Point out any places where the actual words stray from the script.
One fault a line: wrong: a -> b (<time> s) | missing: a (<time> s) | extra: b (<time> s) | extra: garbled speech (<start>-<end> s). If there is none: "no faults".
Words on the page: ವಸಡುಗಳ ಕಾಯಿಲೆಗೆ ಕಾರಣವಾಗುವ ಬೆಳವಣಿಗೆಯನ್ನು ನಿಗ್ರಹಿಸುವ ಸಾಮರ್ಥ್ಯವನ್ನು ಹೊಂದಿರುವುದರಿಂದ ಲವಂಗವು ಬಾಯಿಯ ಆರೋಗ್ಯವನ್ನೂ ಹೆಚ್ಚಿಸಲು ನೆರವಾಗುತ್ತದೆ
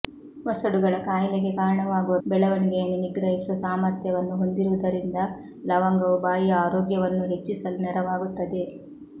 no faults